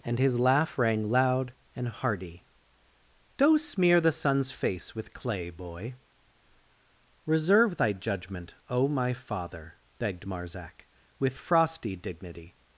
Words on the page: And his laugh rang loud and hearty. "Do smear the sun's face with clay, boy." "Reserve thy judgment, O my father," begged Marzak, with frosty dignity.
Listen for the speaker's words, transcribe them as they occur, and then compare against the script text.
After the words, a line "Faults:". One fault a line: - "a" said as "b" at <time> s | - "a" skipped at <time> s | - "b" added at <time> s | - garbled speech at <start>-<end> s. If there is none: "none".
And his laugh rang loud and hearty. "Do smear the sun's face with clay, boy." "Reserve thy judgment, O my father," begged Marzak, with frosty dignity.
Faults:
none